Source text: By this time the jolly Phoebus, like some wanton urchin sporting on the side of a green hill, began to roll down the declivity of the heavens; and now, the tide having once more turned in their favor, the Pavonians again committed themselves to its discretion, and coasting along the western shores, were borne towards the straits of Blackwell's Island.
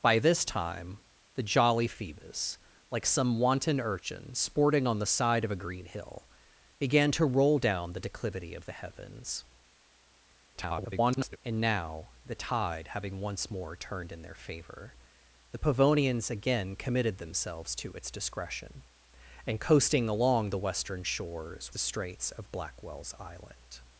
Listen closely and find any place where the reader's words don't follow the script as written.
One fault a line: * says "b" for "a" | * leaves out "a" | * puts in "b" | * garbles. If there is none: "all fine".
* garbles
* leaves out "were borne towards"